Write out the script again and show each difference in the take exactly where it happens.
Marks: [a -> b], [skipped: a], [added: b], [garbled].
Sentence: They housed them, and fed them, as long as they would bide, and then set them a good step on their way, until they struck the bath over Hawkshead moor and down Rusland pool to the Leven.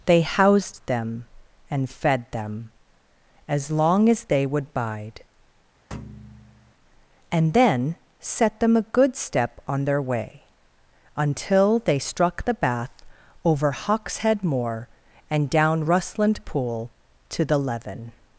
They housed them, and fed them, as long as they would bide, and then set them a good step on their way, until they struck the bath over Hawkshead moor and down Rusland pool to the Leven.